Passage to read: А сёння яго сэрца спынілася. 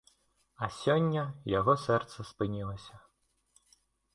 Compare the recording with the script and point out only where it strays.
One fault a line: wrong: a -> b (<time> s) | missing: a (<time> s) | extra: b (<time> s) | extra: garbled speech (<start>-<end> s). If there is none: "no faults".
no faults